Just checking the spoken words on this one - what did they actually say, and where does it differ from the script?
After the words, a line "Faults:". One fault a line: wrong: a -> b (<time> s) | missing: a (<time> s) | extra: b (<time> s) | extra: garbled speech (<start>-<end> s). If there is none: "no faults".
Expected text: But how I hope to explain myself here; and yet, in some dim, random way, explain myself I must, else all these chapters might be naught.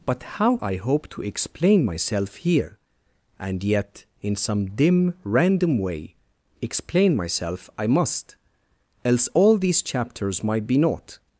But how I hope to explain myself here; and yet, in some dim, random way, explain myself I must, else all these chapters might be naught.
Faults:
no faults